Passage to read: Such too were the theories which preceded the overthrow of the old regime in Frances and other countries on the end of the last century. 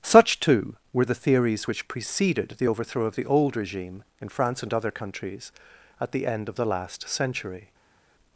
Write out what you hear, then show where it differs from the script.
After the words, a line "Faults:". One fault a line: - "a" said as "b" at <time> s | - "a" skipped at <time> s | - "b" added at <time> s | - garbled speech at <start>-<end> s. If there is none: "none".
Such too were the theories which preceded the overthrow of the old regime in France and other countries at the end of the last century.
Faults:
- "Frances" said as "France" at 4.3 s
- "on" said as "at" at 6.0 s